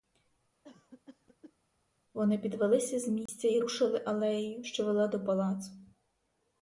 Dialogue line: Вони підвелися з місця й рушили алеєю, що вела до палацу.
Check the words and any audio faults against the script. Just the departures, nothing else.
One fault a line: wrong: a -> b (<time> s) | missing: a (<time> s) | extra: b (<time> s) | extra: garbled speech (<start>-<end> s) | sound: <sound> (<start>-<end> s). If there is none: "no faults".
sound: cough (0.6-1.6 s)
sound: dropout (3.3-3.3 s)